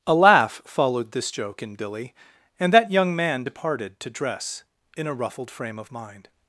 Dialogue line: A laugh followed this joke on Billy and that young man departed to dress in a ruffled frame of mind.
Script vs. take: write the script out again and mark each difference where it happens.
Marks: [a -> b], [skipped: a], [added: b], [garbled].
A laugh followed this joke [on -> in] Billy and that young man departed to dress in a ruffled frame of mind.